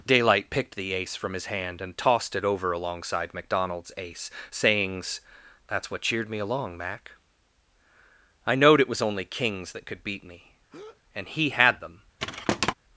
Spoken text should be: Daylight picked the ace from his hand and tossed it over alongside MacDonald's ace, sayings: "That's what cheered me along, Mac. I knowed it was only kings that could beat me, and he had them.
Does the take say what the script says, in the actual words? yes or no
yes